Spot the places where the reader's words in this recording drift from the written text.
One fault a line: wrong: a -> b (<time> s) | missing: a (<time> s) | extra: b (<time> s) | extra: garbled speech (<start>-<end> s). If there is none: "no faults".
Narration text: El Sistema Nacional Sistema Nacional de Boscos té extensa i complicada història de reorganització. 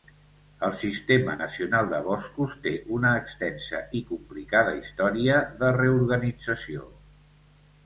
missing: Sistema Nacional (1.9 s)
extra: una (3.0 s)